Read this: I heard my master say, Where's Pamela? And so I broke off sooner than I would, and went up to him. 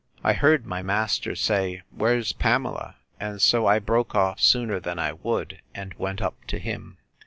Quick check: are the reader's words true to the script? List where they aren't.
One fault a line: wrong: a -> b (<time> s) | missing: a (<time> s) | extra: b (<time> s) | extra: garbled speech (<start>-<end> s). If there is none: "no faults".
no faults